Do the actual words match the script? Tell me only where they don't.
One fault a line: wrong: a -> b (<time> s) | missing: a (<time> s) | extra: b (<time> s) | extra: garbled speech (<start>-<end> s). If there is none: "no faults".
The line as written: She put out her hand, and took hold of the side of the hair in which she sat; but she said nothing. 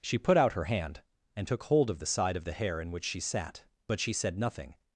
no faults